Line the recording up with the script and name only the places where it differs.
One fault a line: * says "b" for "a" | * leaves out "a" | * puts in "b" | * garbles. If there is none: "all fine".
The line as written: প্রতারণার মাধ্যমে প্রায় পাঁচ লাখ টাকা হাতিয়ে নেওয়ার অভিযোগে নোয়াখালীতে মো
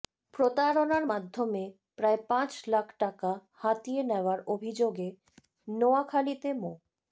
all fine